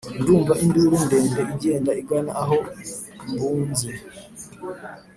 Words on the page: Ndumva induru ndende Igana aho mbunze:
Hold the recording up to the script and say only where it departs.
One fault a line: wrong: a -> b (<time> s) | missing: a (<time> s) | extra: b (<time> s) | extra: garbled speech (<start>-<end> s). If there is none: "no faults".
extra: Igenda (1.5 s)